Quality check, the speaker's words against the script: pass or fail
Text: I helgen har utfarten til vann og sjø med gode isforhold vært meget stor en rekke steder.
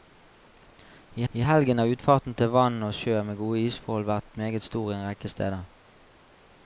fail